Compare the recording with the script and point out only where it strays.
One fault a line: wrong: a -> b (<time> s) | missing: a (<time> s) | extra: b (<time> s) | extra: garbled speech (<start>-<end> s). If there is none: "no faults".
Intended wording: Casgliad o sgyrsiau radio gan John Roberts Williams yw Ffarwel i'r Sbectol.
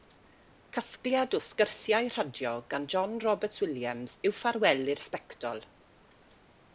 no faults